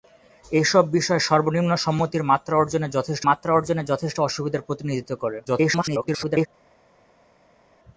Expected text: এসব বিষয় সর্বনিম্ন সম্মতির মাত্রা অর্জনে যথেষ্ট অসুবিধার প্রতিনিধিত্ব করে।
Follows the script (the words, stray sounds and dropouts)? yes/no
no